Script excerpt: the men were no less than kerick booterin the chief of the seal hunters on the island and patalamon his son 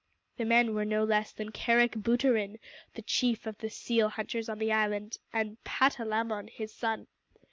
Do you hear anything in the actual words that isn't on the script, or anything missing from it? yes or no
no